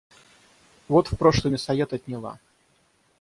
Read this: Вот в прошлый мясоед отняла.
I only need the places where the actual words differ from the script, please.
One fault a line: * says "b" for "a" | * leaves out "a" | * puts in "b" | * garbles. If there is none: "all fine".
all fine